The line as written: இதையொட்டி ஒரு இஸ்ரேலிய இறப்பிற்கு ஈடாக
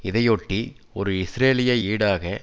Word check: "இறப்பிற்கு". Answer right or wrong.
wrong